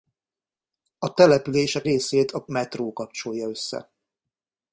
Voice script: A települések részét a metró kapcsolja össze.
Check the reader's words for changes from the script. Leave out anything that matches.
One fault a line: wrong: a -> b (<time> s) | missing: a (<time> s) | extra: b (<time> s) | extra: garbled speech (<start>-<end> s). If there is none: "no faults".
no faults